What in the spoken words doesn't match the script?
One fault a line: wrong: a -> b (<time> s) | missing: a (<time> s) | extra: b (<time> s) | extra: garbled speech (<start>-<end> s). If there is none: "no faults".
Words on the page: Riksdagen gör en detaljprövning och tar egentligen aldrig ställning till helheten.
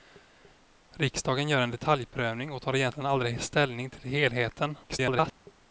extra: garbled speech (4.8-5.3 s)